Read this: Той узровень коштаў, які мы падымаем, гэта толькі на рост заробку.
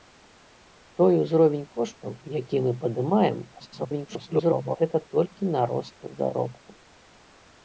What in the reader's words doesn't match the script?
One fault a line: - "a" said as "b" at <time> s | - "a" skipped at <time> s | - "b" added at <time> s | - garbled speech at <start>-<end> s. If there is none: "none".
- garbled speech at 3.6-4.8 s